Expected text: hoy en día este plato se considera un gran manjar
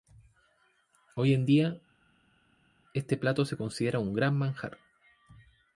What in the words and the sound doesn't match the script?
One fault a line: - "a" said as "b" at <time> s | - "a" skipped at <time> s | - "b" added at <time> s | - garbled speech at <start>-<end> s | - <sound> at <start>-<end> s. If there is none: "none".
none